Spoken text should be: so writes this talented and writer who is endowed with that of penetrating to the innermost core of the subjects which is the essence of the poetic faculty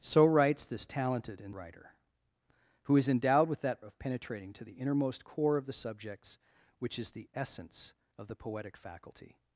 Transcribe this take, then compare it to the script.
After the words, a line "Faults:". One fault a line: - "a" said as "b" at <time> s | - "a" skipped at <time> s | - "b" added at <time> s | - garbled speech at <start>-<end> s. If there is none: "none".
so writes this talented and writer who is endowed with that of penetrating to the innermost core of the subjects which is the essence of the poetic faculty
Faults:
none